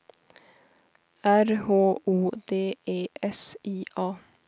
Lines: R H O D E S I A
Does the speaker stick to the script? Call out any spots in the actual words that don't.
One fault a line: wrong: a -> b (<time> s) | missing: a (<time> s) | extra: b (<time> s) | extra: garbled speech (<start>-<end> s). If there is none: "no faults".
no faults